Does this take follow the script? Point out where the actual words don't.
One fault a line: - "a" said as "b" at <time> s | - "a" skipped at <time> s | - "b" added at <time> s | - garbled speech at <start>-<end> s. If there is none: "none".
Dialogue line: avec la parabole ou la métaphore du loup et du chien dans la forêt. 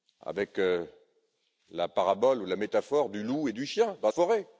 - "la" skipped at 4.1 s